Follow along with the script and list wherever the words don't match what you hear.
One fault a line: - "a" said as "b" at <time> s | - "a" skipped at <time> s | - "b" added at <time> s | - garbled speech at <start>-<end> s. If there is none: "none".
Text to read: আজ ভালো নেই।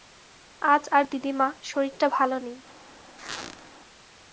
- "আর দিদিমা শরীরটা" added at 0.9 s